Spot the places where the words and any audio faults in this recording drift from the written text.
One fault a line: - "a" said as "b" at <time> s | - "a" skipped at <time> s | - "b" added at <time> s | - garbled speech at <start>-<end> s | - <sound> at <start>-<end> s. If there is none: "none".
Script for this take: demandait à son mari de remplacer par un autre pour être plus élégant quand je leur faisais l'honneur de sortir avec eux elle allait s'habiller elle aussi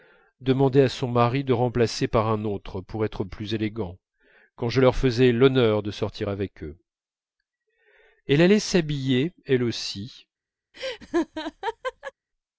- laugh at 10.7-12.1 s